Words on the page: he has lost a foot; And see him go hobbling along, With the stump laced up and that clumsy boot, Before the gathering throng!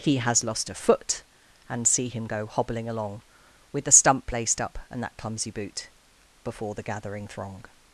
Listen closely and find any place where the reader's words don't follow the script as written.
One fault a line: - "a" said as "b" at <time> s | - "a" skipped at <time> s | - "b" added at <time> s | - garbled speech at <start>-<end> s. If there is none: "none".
none